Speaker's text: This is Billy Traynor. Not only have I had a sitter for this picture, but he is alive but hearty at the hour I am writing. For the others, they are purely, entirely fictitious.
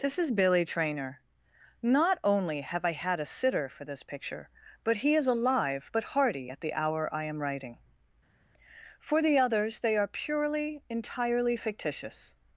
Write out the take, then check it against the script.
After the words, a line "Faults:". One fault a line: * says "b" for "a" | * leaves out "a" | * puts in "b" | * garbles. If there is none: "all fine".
This is Billy Traynor. Not only have I had a sitter for this picture, but he is alive but hearty at the hour I am writing. For the others, they are purely, entirely fictitious.
Faults:
all fine